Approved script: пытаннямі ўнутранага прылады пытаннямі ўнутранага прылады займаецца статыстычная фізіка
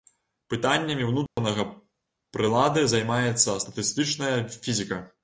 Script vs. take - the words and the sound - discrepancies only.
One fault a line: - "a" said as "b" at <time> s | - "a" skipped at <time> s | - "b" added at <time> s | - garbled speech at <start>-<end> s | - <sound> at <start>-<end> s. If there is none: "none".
- dropout at 1.3-1.4 s
- "пытаннямі ўнутранага прылады" skipped at 2.9 s